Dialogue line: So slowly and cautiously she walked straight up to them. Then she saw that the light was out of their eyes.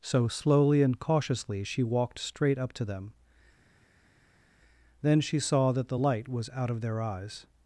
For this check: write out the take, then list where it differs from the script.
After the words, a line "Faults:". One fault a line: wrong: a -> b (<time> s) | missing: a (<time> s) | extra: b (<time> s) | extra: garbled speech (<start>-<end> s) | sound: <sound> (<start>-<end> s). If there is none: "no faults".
So slowly and cautiously she walked straight up to them. Then she saw that the light was out of their eyes.
Faults:
no faults